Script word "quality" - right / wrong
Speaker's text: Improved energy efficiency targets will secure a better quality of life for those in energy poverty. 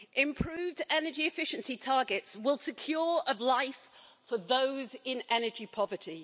wrong